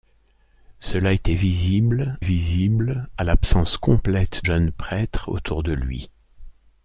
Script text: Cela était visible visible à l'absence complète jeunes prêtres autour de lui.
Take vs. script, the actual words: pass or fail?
pass